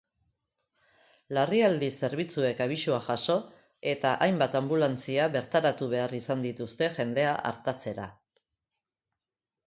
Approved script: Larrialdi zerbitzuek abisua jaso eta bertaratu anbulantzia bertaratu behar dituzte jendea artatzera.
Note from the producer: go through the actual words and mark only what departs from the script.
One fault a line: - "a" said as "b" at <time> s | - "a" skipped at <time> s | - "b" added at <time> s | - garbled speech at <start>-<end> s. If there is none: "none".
- "bertaratu" said as "hainbat" at 4.3 s
- "izan" added at 6.2 s